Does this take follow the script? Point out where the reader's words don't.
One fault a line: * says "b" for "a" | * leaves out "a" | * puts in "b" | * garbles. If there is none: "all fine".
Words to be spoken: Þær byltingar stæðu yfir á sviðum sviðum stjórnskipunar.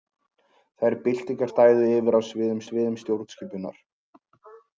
all fine